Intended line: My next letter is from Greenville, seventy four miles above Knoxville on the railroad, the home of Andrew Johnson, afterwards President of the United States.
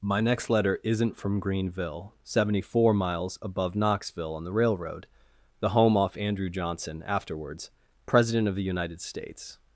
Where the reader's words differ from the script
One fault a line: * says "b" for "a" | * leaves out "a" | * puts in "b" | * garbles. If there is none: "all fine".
* says "isn't" for "is"
* says "off" for "of"